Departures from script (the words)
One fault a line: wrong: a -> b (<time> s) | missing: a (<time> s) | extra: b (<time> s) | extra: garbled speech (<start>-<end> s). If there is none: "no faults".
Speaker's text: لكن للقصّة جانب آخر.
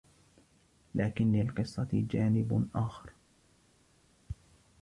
no faults